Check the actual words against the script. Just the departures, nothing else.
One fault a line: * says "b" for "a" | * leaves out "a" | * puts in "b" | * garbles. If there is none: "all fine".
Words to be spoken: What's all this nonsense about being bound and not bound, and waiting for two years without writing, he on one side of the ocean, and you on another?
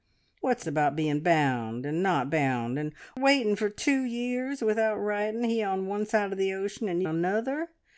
* leaves out "all this nonsense"
* leaves out "you on"